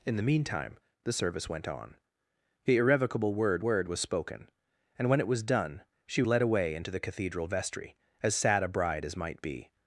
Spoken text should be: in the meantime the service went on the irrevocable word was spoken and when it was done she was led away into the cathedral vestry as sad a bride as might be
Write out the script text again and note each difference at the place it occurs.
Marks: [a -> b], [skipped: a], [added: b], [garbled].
in the meantime the service went on the irrevocable word [added: word] was spoken and when it was done she [skipped: was] led away into the cathedral vestry as sad a bride as might be